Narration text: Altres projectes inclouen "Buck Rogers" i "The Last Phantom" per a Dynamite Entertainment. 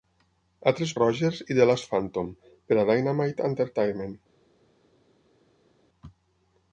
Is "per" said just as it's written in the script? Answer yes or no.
yes